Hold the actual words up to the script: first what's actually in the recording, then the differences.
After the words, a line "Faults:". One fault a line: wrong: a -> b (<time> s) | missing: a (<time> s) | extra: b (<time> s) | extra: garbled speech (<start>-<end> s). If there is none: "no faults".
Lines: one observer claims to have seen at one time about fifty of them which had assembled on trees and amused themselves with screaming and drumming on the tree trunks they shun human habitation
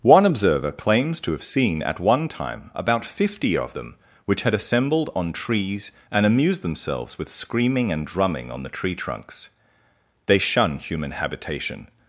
one observer claims to have seen at one time about fifty of them which had assembled on trees and amused themselves with screaming and drumming on the tree trunks they shun human habitation
Faults:
no faults